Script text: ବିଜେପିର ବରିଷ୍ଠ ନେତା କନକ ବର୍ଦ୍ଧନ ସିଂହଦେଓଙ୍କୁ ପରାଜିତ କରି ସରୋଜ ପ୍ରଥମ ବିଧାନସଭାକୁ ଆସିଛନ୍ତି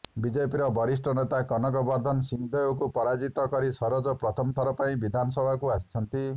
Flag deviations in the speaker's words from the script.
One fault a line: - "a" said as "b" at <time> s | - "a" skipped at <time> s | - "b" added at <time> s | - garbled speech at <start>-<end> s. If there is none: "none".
- "ଥର ପାଇଁ" added at 4.6 s